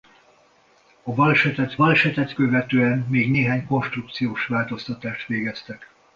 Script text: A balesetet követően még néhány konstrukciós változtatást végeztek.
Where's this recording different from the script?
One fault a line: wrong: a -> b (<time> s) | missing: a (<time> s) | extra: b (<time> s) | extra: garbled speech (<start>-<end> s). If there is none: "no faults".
extra: balesetet (1.7 s)